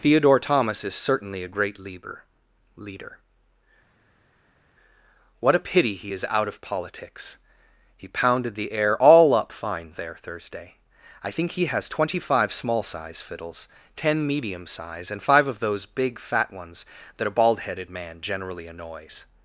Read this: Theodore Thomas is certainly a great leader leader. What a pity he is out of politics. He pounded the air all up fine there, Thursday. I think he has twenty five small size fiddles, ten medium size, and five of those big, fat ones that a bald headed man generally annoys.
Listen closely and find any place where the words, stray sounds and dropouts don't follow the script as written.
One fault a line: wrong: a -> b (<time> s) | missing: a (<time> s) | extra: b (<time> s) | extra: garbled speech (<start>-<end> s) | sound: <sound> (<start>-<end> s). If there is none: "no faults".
no faults